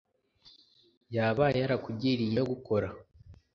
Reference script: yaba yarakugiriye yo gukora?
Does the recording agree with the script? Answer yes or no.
yes